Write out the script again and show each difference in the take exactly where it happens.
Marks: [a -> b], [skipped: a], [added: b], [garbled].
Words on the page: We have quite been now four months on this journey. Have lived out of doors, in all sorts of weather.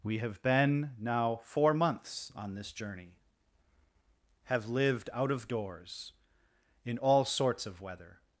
We have [skipped: quite] been now four months on this journey. Have lived out of doors, in all sorts of weather.